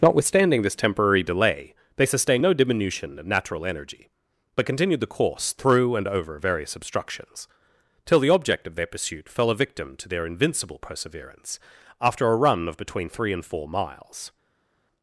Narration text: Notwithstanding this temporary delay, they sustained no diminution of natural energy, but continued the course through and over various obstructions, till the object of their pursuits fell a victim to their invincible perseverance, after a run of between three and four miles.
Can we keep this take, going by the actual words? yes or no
no